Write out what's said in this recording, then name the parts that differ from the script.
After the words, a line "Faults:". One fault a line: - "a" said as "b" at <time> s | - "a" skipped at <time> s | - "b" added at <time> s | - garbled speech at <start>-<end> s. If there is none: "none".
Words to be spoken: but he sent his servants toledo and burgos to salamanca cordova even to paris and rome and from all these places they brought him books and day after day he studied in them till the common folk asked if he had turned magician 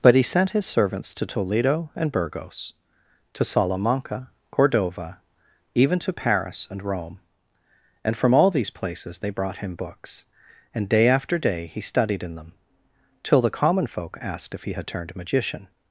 but he sent his servants to toledo and burgos to salamanca cordova even to paris and rome and from all these places they brought him books and day after day he studied in them till the common folk asked if he had turned magician
Faults:
- "to" added at 1.1 s